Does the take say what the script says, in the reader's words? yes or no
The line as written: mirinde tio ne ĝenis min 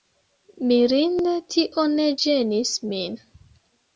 yes